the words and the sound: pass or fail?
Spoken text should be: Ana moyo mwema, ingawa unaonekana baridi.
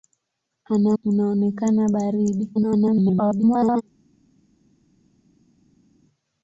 fail